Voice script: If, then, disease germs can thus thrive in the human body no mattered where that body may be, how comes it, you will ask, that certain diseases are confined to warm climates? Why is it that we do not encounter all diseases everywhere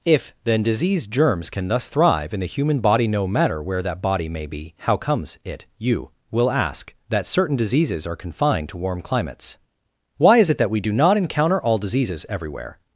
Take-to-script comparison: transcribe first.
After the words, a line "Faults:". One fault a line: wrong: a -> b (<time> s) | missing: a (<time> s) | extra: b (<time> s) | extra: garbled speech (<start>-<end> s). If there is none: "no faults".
If, then, disease germs can thus thrive in the human body no matter where that body may be, how comes it, you will ask, that certain diseases are confined to warm climates? Why is it that we do not encounter all diseases everywhere
Faults:
wrong: mattered -> matter (3.3 s)